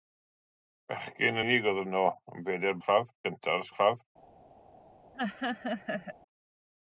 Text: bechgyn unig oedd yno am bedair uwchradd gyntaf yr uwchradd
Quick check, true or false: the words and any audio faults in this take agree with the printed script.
false